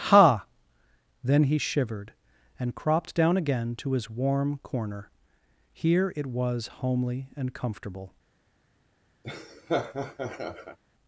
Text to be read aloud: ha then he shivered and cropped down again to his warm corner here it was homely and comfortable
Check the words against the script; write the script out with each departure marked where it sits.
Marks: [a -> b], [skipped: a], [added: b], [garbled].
ha then he shivered and cropped down again to his warm corner here it was homely and comfortable